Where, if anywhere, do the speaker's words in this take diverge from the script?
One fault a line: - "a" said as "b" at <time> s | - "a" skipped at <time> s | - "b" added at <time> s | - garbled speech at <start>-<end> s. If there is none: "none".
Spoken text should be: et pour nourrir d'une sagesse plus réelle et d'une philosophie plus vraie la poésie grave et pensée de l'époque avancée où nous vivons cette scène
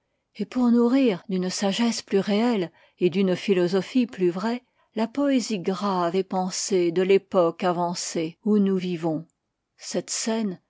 none